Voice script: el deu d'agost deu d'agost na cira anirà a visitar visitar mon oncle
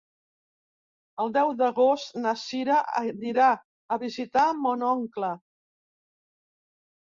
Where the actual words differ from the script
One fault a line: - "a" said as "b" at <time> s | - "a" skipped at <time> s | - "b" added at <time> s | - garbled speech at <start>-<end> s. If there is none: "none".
- "deu d'agost" skipped at 2.2 s
- "visitar" skipped at 4.5 s